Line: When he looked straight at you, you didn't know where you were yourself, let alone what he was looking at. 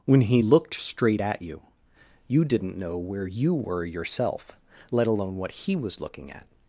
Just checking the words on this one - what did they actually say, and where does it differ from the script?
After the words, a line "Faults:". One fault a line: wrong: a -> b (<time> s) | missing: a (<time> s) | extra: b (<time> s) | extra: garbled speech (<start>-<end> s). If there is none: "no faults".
When he looked straight at you, you didn't know where you were yourself, let alone what he was looking at.
Faults:
no faults